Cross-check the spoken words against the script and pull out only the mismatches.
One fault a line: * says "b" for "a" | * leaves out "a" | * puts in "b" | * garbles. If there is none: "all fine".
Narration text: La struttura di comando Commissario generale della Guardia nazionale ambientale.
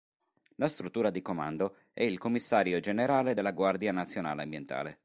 * puts in "è il"